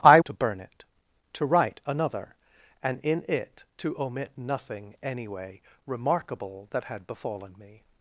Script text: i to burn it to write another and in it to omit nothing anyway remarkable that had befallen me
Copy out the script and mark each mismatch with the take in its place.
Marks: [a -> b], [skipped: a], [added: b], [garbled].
i to burn it to write another and in it to omit nothing anyway remarkable that had befallen me